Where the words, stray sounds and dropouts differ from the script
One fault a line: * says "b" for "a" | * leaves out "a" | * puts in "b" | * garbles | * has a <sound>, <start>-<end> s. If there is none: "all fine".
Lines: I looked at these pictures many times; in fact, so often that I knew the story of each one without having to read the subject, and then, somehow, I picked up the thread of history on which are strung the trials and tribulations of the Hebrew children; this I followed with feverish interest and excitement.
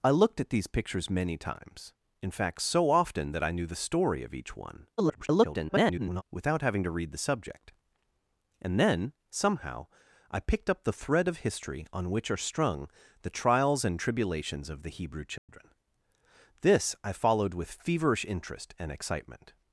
* garbles
* has a dropout, 15.4-15.5 s